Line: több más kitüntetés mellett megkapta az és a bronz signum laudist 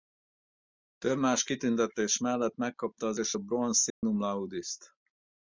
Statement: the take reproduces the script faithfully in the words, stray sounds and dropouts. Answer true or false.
false